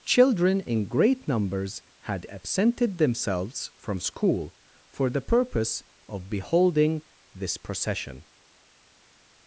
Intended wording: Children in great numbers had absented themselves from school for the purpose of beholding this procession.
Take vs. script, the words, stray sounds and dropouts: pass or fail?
pass